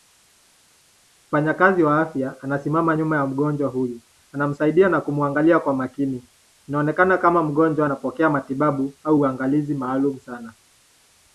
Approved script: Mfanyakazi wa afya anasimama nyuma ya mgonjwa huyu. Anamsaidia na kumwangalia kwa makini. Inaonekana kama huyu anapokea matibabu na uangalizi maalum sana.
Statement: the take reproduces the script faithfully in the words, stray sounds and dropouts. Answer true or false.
false